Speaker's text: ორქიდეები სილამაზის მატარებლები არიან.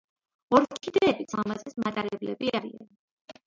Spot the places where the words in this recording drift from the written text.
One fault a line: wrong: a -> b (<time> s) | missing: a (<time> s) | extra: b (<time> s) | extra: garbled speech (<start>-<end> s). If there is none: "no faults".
no faults